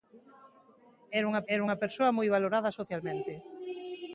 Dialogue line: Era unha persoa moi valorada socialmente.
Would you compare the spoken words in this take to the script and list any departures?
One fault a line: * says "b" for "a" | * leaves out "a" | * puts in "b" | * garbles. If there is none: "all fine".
* puts in "era unha"